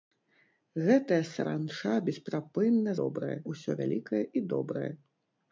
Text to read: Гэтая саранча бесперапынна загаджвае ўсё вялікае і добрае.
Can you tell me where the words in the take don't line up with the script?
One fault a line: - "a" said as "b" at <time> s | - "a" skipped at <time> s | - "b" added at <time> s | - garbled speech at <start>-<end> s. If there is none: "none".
- "загаджвае" said as "добрае" at 3.0 s